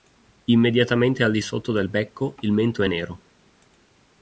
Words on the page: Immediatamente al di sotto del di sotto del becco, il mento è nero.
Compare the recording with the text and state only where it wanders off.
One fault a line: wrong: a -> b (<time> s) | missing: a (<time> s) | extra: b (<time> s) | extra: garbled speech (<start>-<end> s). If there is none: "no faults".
missing: di sotto del (1.9 s)